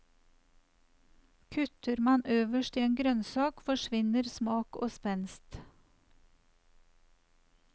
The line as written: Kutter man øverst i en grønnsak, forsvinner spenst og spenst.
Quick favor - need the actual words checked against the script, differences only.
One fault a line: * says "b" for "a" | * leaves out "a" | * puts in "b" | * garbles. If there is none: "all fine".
* says "smak" for "spenst"